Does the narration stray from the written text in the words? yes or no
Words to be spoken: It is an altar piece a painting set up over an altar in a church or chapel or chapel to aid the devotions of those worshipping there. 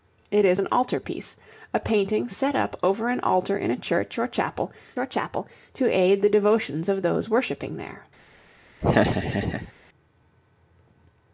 no